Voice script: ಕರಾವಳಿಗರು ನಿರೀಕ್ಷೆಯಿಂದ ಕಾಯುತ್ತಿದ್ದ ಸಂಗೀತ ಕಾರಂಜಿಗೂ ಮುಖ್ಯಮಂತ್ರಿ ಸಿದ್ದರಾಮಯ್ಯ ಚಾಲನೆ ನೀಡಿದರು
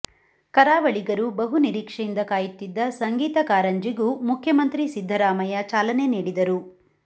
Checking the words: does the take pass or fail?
fail